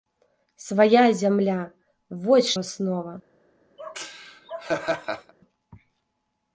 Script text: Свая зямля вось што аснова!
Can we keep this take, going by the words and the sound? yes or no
no